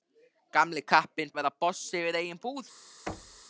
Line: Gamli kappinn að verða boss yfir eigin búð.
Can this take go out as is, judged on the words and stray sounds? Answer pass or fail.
fail